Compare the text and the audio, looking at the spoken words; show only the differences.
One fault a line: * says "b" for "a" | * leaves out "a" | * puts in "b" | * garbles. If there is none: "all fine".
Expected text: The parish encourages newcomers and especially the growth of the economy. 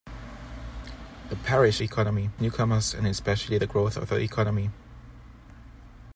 * says "economy" for "encourages"